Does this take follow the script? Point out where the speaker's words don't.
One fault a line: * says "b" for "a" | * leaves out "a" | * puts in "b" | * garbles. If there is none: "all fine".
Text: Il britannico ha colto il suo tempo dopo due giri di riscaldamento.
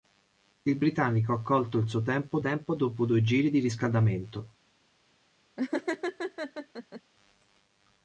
* puts in "tempo"